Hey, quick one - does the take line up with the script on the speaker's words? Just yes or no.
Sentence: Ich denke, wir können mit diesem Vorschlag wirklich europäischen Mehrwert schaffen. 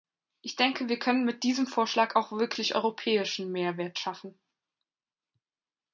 no